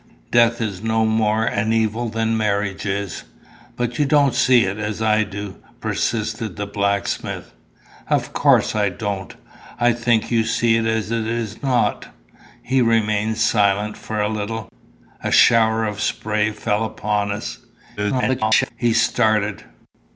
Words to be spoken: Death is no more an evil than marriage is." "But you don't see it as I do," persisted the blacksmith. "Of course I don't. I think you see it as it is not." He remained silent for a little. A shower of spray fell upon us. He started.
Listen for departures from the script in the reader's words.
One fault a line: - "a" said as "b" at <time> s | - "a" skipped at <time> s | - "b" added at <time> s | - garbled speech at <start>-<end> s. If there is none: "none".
- garbled speech at 18.0-18.7 s